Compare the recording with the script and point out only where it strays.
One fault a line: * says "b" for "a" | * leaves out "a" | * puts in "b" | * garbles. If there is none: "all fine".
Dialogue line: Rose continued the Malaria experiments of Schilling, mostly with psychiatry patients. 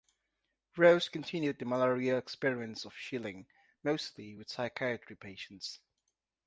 all fine